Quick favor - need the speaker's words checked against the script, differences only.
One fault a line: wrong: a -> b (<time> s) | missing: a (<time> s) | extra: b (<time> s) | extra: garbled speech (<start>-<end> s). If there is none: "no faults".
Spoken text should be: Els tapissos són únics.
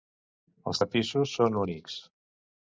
no faults